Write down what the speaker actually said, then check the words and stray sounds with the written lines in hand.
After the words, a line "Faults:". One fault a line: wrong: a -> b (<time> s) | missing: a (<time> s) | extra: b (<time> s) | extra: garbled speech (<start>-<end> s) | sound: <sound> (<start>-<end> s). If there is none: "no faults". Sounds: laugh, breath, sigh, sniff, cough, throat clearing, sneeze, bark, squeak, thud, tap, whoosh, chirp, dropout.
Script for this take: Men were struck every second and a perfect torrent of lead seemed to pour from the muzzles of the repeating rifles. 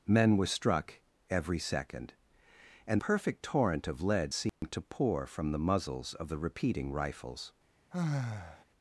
Men were struck every second and perfect torrent of lead seemed to pour from the muzzles of the repeating rifles.
Faults:
missing: a (3.0 s)
sound: dropout (4.5-4.6 s)
sound: sigh (7.9-8.6 s)